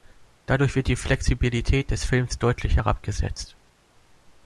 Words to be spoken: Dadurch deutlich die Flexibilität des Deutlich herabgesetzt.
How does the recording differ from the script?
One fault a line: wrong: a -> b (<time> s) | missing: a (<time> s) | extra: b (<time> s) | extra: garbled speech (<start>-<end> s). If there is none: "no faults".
wrong: deutlich -> wird (0.8 s)
extra: Films (2.0 s)